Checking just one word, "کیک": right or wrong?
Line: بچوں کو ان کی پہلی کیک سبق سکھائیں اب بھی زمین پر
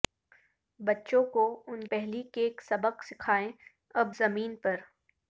right